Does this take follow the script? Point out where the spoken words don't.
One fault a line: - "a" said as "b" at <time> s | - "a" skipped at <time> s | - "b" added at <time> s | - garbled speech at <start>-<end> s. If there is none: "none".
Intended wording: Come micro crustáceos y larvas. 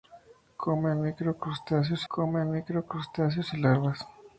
- "come micro crustáceos" added at 2.1 s